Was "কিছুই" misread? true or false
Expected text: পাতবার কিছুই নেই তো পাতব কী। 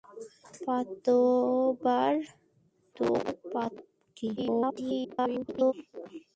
true